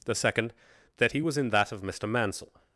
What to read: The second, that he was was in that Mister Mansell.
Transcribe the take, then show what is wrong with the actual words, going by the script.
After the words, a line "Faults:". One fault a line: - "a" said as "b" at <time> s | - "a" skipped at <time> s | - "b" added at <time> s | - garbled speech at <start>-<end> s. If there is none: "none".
The second, that he was in that of Mister Mansell.
Faults:
- "was" skipped at 1.4 s
- "of" added at 1.7 s